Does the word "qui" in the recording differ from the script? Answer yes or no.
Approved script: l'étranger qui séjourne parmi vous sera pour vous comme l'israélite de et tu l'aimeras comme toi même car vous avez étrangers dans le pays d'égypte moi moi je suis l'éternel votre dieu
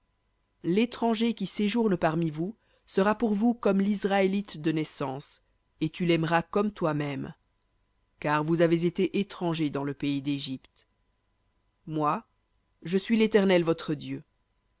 no